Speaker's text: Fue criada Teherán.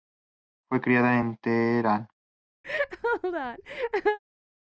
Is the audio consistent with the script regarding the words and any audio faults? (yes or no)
no